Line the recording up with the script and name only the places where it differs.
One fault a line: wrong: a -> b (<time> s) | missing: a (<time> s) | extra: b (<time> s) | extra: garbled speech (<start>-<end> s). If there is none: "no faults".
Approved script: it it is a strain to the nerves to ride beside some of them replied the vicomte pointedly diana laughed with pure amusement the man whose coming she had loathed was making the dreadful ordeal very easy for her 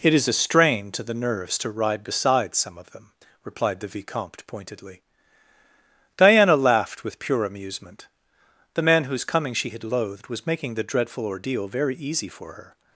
missing: it (0.1 s)